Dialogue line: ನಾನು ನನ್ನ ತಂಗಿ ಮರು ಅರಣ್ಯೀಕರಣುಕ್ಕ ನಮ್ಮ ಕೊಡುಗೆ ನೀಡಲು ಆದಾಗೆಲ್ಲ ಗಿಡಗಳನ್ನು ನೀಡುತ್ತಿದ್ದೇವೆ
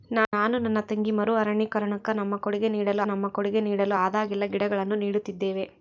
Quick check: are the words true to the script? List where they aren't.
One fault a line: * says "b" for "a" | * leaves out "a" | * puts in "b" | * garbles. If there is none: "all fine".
* puts in "ನಮ್ಮ ಕೊಡುಗೆ ನೀಡಲು"